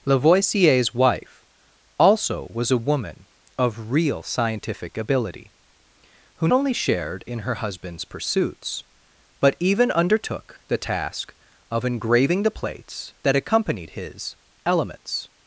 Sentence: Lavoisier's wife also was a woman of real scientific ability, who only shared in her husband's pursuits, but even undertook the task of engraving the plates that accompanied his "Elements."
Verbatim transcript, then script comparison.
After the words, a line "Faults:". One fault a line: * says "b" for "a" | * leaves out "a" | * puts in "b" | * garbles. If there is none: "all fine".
Lavoisier's wife also was a woman of real scientific ability, who only shared in her husband's pursuits, but even undertook the task of engraving the plates that accompanied his "Elements."
Faults:
all fine